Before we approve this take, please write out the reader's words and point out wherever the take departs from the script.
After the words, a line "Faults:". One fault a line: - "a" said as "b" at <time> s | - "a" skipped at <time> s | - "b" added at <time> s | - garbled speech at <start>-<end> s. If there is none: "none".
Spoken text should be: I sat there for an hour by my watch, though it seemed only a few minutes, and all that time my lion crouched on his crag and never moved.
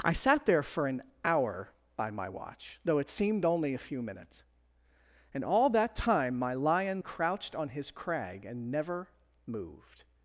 I sat there for an hour by my watch, though it seemed only a few minutes, and all that time my lion crouched on his crag and never moved.
Faults:
none